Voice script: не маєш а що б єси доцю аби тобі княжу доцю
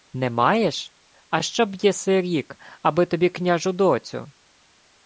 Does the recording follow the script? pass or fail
fail